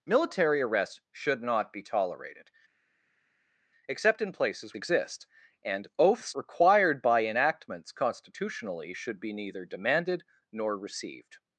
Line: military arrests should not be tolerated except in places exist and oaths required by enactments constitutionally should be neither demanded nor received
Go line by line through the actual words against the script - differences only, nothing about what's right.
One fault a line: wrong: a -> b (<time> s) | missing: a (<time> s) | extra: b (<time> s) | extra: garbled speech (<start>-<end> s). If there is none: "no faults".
no faults